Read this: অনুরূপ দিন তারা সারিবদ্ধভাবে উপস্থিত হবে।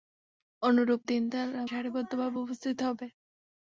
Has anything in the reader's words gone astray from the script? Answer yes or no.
no